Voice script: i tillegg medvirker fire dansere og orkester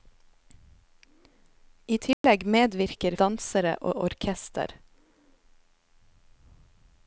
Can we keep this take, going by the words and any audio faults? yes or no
no